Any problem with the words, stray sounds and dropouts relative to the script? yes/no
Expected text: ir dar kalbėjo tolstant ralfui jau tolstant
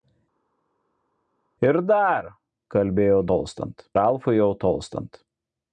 no